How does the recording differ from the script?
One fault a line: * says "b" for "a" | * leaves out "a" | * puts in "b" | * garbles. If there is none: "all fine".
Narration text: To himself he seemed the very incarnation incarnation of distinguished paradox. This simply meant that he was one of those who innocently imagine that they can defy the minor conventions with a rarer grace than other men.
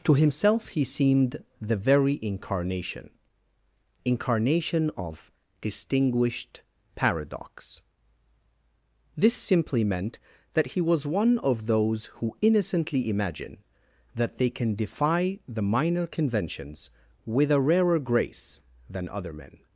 all fine